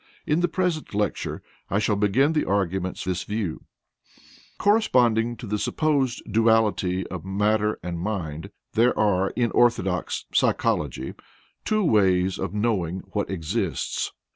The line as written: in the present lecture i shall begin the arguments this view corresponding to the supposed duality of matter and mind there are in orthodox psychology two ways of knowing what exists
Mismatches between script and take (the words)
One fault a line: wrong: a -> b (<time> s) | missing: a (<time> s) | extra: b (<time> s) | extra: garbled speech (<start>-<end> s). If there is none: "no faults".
no faults